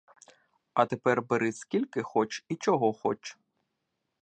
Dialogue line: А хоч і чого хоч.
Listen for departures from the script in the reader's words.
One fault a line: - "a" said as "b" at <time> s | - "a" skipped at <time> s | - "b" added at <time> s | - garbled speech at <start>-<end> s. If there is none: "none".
- "тепер бери скільки" added at 0.8 s